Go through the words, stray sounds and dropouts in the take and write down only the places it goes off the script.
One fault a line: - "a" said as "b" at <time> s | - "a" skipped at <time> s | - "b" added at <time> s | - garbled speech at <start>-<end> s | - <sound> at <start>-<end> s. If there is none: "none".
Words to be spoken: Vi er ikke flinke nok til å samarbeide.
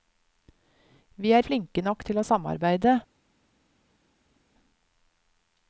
- "ikke" skipped at 1.4 s